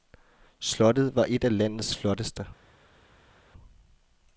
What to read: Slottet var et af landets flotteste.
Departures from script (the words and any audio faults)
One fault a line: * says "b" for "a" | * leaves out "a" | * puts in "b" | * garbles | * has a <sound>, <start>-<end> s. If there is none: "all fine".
all fine